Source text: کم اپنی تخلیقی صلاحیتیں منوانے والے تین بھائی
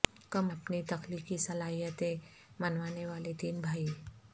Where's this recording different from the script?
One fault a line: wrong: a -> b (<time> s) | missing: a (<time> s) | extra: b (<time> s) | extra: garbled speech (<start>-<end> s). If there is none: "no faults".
no faults